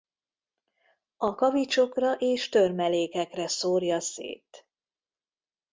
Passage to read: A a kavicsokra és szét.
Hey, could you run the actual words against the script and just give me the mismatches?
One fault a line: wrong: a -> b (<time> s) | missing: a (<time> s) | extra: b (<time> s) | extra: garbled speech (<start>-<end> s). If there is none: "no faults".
missing: a (1.4 s)
extra: törmelékekre szórja (2.5 s)